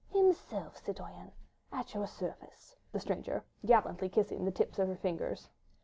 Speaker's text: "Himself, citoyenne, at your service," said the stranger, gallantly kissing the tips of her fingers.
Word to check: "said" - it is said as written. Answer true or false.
false